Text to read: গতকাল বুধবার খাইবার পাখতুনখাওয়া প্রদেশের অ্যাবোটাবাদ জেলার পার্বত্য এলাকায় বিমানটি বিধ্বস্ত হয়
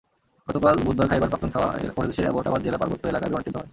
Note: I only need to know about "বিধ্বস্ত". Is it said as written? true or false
false